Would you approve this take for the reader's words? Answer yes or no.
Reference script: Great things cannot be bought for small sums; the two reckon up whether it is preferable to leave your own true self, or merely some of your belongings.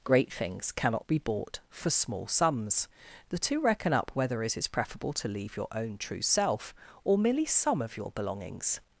yes